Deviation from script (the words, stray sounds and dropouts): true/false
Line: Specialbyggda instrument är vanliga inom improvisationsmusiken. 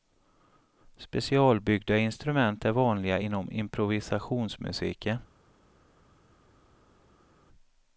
false